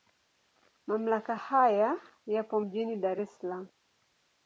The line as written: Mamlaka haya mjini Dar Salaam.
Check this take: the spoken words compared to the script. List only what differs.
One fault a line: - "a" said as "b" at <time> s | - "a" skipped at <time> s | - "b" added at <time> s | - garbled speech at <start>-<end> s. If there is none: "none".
- "yapo" added at 2.3 s
- "es" added at 3.2 s